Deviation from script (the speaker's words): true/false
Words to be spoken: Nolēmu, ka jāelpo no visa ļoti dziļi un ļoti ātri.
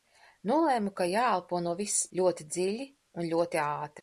false